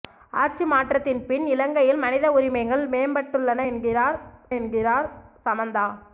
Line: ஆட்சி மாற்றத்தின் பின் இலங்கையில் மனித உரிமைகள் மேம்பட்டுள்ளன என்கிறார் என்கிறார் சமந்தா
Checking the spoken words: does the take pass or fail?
pass